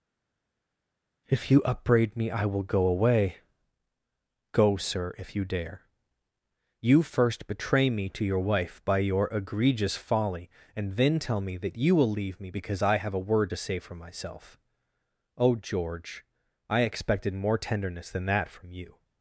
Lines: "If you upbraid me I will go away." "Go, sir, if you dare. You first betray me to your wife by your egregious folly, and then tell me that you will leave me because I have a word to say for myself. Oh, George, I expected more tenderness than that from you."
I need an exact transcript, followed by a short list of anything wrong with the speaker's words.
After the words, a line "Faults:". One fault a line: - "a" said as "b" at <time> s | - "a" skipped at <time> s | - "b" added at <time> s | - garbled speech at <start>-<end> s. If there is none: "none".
"If you upbraid me I will go away." "Go, sir, if you dare. You first betray me to your wife by your egregious folly, and then tell me that you will leave me because I have a word to say for myself. Oh, George, I expected more tenderness than that from you."
Faults:
none